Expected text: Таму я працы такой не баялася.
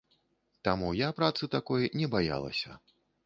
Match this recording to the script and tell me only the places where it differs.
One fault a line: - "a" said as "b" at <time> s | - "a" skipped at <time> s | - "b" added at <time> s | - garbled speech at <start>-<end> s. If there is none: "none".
none